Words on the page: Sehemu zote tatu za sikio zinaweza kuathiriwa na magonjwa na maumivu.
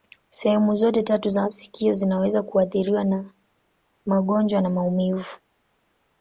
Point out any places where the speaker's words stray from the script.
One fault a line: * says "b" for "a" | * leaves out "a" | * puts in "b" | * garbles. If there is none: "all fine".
all fine